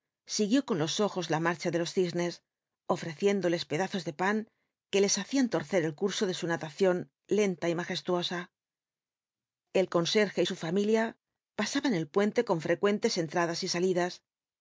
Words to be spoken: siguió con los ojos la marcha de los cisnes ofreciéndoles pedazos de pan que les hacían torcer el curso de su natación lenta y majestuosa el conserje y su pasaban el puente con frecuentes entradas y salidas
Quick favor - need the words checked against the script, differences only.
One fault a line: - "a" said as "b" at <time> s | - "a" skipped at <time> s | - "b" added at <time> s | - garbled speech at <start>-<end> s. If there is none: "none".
- "familia" added at 10.5 s